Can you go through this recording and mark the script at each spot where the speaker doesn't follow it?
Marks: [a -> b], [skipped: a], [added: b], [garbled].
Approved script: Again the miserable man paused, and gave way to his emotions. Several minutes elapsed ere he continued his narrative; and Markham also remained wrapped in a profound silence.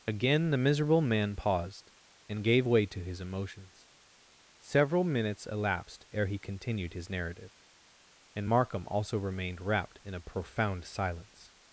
Again the miserable man paused, and gave way to his emotions. Several minutes elapsed ere he continued his narrative; and Markham also remained wrapped in a profound silence.